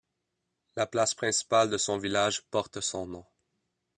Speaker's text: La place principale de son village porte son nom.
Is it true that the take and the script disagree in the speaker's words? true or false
false